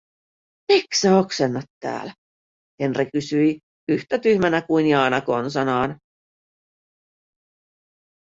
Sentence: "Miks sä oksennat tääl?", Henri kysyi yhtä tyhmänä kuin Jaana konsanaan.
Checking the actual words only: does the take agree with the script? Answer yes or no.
yes